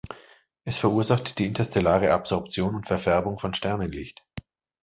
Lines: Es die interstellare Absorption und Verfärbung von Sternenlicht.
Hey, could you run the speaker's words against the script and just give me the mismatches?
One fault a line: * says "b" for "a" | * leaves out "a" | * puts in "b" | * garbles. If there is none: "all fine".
* puts in "verursacht"